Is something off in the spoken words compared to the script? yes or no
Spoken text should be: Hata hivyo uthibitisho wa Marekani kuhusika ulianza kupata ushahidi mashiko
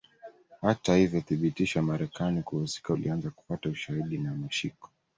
yes